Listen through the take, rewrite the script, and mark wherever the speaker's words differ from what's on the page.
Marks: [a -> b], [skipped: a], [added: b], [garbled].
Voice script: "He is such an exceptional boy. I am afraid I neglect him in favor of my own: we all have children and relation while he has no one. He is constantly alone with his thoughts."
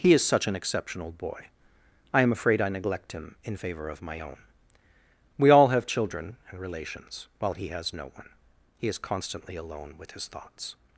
"He is such an exceptional boy. I am afraid I neglect him in favor of my own: we all have children and [relation -> relations] while he has no one. He is constantly alone with his thoughts."